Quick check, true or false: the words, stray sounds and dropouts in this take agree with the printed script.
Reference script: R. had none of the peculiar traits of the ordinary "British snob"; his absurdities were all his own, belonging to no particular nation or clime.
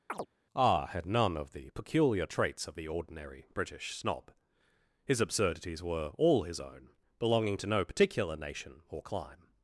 false